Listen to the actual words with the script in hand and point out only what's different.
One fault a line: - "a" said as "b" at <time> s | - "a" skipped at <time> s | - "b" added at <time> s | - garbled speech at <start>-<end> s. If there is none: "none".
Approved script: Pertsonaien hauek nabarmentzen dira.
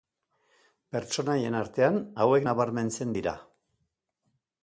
- "artean" added at 1.6 s